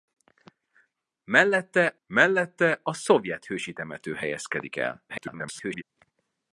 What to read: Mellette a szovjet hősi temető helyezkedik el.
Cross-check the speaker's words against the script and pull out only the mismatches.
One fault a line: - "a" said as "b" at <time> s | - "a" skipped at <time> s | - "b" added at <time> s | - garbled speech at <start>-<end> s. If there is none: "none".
- "mellette" added at 2.1 s
- garbled speech at 5.1-5.8 s